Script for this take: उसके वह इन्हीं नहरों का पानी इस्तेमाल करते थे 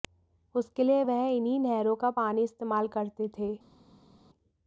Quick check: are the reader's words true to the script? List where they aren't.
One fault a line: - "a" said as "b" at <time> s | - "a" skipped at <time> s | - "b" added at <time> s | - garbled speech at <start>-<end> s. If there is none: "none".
- "लिए" added at 0.8 s